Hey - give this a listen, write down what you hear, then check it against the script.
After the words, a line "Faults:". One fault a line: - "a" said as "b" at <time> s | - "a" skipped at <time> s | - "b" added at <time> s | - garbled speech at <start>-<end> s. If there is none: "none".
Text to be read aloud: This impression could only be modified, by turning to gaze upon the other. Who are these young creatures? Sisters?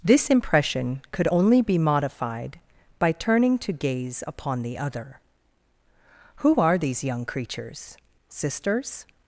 This impression could only be modified, by turning to gaze upon the other. Who are these young creatures? Sisters?
Faults:
none